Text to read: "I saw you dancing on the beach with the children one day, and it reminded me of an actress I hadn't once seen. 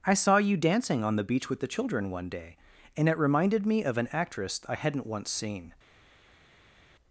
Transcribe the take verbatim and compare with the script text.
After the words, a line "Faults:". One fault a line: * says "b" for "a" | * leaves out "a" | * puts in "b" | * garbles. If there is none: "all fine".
"I saw you dancing on the beach with the children one day, and it reminded me of an actress I hadn't once seen.
Faults:
all fine